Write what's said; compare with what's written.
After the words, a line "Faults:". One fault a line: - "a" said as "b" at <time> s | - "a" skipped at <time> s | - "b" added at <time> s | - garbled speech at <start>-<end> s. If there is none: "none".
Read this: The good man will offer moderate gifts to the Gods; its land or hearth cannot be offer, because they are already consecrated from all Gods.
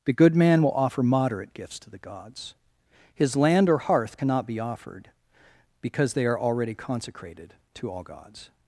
The good man will offer moderate gifts to the Gods; his land or hearth cannot be offered, because they are already consecrated to all Gods.
Faults:
- "its" said as "his" at 3.1 s
- "offer" said as "offered" at 4.6 s
- "from" said as "to" at 7.7 s